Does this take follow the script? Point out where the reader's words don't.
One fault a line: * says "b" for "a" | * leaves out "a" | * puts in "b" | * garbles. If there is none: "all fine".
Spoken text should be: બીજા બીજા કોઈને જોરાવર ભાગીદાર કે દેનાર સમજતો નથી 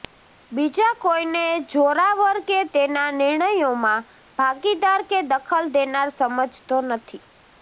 * leaves out "બીજા"
* puts in "કે તેના નિર્ણયોમાં"
* puts in "દખલ"